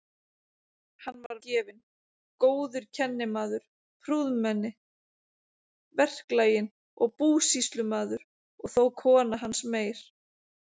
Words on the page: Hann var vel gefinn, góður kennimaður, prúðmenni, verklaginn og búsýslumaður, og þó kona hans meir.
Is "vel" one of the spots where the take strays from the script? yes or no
yes